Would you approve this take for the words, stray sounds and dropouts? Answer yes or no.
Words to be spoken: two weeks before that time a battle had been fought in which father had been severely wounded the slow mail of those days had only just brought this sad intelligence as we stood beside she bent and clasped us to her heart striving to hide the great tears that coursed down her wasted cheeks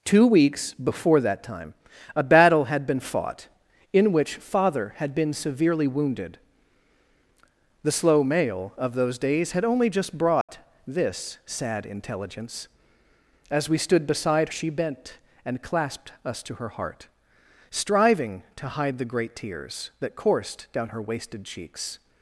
no